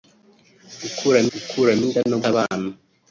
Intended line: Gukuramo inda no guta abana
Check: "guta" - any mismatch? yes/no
yes